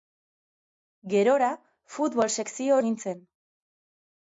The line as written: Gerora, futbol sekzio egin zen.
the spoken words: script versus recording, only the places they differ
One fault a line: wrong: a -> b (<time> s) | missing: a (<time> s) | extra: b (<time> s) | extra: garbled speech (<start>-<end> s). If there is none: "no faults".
no faults